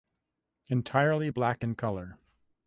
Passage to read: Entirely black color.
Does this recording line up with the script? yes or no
no